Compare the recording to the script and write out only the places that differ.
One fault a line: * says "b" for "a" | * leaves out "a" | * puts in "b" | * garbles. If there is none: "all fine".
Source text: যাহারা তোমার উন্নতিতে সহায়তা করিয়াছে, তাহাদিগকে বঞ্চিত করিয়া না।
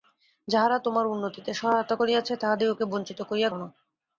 all fine